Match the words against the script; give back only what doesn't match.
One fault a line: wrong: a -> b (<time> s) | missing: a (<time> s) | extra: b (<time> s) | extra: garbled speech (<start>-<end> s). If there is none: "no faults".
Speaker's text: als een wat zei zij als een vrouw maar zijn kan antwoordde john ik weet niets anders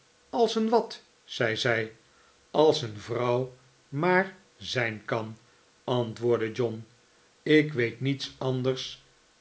no faults